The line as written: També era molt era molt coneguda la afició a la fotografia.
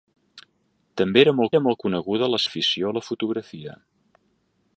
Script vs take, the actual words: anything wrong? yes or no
no